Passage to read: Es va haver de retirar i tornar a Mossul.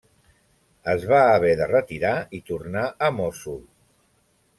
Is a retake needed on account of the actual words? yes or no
no